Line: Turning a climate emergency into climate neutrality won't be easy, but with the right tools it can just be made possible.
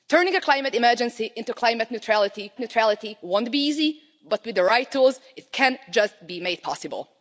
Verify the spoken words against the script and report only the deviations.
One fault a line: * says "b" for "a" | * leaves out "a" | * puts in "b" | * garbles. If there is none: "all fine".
* puts in "neutrality"